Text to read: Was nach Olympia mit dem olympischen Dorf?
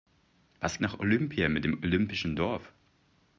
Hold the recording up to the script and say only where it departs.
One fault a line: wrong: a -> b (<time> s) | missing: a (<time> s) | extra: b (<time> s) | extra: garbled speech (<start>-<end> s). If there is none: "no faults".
no faults